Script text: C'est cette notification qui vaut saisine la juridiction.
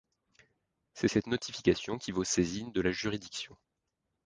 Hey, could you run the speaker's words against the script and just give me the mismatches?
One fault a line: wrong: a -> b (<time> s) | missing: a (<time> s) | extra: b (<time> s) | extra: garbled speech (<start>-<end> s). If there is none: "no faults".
extra: de (2.7 s)